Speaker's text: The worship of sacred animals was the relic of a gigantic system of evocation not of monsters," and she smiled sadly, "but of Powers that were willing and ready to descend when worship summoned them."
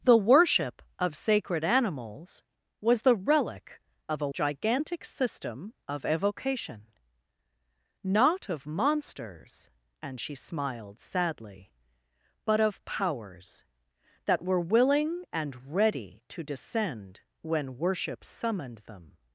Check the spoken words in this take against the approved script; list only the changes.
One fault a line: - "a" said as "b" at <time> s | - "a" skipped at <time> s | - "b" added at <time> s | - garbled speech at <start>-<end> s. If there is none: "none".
none